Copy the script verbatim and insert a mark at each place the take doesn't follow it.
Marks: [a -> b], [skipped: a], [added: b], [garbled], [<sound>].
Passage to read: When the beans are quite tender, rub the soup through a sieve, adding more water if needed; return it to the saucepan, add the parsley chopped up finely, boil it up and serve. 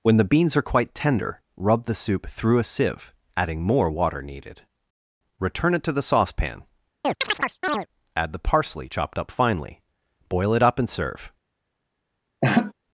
When the beans are quite tender, rub the soup through a sieve, adding more water [skipped: if] needed; return it to the saucepan, [chirp] add the parsley chopped up finely, boil it up and serve. [laugh]